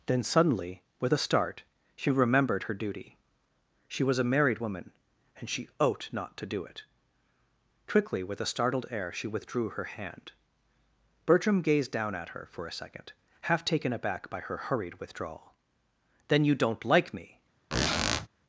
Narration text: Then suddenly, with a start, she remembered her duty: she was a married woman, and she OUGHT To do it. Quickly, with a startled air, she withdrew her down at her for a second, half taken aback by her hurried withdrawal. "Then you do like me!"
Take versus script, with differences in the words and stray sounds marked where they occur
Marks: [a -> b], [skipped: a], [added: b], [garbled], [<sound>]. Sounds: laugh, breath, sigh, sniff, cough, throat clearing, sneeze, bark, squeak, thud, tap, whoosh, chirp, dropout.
Then suddenly, with a start, she remembered her duty: she was a married woman, and she OUGHT [added: NOT] To do it. Quickly, with a startled air, she withdrew her [added: hand Bertram gazed] down at her for a second, half taken aback by her hurried withdrawal. "Then you [do -> don't] like me!" [squeak]